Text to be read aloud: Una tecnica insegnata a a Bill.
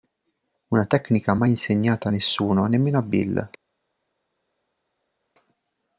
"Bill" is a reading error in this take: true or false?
false